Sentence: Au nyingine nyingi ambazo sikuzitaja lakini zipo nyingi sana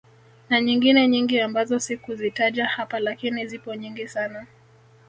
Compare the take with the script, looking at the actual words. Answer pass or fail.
fail